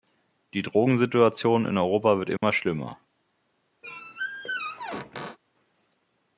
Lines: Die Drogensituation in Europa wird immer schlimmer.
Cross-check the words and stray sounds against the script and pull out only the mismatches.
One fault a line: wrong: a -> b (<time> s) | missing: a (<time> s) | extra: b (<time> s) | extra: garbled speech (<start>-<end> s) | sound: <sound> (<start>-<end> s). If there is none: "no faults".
sound: dropout (2.4-2.4 s)
sound: squeak (3.8-5.4 s)